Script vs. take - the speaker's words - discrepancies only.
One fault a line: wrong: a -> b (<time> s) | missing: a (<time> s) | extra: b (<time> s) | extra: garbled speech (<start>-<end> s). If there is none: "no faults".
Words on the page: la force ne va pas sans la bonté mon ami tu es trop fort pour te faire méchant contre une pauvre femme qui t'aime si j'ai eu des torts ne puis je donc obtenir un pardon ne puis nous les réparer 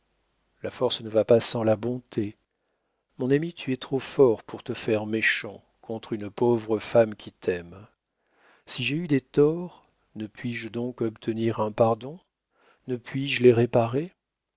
wrong: nous -> je (13.3 s)